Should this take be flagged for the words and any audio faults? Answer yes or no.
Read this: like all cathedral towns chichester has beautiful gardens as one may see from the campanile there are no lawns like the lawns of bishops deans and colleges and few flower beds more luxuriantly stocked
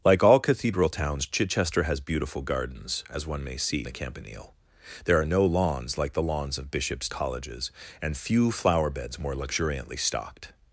yes